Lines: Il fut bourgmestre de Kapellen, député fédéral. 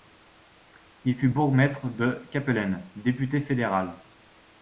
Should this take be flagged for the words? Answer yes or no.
no